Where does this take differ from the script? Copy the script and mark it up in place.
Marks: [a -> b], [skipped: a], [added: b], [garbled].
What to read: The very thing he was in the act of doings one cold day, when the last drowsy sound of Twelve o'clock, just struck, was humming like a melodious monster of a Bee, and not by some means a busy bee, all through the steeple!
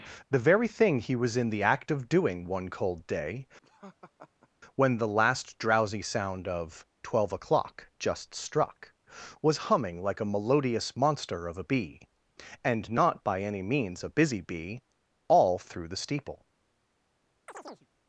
The very thing he was in the act of [doings -> doing] one cold day, when the last drowsy sound of Twelve o'clock, just struck, was humming like a melodious monster of a Bee, and not by [some -> any] means a busy bee, all through the steeple!